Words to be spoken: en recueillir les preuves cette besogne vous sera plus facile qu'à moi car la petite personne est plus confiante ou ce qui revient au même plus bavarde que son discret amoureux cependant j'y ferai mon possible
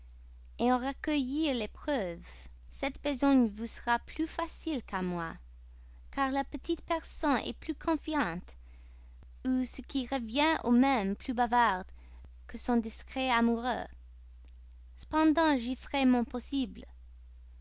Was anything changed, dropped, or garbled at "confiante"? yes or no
no